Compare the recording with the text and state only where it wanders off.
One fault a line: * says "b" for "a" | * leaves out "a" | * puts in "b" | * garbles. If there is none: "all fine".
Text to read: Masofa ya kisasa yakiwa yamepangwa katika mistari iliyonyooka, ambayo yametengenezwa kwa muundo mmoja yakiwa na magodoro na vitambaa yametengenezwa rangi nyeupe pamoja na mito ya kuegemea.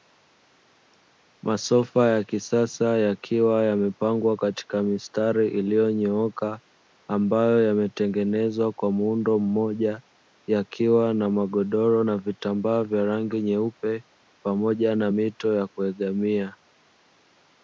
* says "vya" for "yametengenezwa"